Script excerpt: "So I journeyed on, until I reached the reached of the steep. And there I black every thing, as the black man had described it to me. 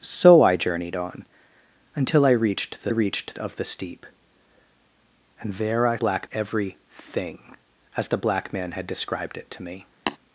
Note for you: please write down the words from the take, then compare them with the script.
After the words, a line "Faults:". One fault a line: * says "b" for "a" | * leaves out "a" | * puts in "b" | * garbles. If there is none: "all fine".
"So I journeyed on, until I reached the reached of the steep. And there I black every thing, as the black man had described it to me.
Faults:
all fine